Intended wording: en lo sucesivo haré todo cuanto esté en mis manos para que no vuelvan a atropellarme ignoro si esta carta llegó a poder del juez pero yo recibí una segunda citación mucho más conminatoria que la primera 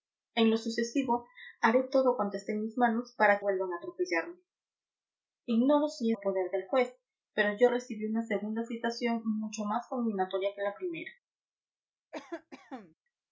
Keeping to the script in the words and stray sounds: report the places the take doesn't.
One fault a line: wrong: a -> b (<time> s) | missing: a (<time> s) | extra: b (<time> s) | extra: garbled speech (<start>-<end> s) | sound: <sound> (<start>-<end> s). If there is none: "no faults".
missing: que no (3.4 s)
missing: esta carta llegó (6.1 s)
sound: cough (12.1-12.9 s)